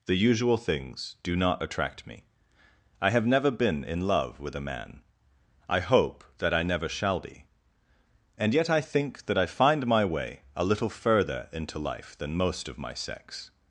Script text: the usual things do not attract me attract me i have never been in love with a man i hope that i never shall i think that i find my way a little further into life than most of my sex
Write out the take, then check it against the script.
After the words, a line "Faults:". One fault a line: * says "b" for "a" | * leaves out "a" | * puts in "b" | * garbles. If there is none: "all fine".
the usual things do not attract me i have never been in love with a man i hope that i never shall be and yet i think that i find my way a little further into life than most of my sex
Faults:
* leaves out "attract me"
* puts in "be and yet"